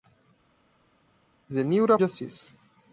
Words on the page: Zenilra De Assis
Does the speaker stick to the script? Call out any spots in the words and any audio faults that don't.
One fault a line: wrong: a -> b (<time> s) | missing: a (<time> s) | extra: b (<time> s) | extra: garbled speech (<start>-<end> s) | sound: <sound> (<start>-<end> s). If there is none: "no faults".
no faults